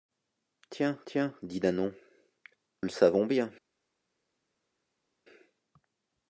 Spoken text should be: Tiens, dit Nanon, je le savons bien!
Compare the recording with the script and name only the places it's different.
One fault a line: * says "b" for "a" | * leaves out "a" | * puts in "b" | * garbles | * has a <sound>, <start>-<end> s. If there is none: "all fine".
* puts in "tiens"
* leaves out "je"